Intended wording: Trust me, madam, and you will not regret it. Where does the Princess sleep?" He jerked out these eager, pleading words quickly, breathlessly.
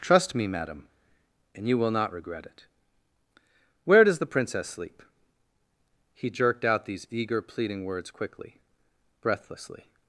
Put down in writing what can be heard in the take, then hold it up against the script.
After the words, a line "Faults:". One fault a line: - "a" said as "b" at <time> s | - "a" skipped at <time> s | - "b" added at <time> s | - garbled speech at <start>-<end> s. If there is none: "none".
Trust me, madam, and you will not regret it. Where does the Princess sleep?" He jerked out these eager, pleading words quickly, breathlessly.
Faults:
none